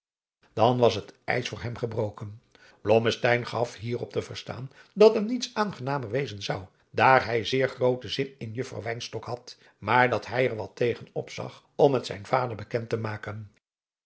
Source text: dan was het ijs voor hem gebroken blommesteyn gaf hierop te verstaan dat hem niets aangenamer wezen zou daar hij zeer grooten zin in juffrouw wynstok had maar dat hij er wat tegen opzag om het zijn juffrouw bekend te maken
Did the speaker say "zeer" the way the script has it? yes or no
yes